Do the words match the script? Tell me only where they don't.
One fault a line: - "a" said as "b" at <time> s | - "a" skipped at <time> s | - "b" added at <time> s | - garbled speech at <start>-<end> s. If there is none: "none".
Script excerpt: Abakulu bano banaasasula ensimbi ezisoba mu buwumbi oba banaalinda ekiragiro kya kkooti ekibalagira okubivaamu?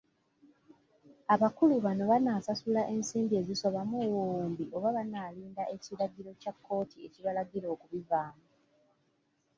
none